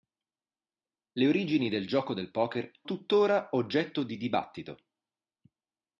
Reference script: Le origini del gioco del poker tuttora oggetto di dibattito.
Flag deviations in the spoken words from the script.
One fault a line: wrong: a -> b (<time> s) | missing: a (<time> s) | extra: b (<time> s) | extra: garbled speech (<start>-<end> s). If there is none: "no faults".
no faults